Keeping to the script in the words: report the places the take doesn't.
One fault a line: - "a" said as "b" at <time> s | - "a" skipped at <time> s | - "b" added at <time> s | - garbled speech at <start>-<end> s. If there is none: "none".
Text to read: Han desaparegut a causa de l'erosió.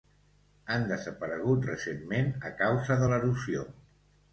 - "recentment" added at 1.7 s